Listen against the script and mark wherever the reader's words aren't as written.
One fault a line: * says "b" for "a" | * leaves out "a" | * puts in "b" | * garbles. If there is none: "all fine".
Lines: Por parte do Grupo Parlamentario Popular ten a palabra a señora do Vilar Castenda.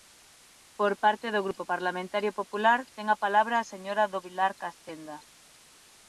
all fine